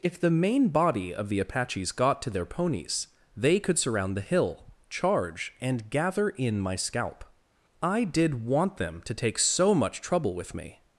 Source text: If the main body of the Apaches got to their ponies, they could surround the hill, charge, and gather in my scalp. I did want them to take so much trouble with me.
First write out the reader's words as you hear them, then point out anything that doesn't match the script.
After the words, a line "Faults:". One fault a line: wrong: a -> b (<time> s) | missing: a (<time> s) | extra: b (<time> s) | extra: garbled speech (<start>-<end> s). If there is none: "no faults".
If the main body of the Apaches got to their ponies, they could surround the hill, charge, and gather in my scalp. I did want them to take so much trouble with me.
Faults:
no faults